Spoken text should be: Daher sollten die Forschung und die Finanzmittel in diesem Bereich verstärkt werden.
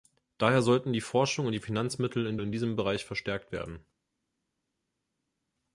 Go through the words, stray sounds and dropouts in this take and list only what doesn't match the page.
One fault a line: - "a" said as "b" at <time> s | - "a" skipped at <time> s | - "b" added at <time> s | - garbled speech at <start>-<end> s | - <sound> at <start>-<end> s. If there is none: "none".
- "in" added at 2.4 s